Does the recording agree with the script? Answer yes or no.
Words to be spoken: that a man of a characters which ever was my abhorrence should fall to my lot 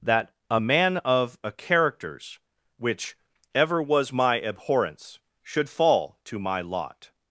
yes